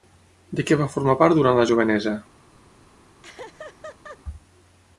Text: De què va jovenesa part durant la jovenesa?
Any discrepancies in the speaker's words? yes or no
yes